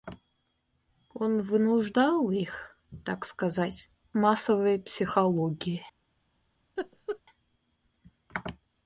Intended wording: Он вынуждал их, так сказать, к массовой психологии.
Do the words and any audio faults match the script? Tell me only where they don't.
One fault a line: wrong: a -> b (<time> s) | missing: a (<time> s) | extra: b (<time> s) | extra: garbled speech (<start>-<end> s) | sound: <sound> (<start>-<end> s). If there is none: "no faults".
missing: к (3.9 s)
sound: laugh (6.8-7.2 s)